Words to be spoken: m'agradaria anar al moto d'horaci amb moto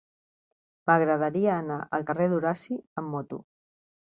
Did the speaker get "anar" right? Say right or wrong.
right